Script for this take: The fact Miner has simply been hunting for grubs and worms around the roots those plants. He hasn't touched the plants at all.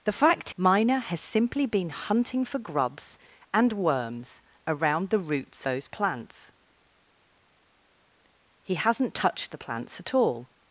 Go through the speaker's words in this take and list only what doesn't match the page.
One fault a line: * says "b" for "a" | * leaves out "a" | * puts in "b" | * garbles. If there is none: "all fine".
all fine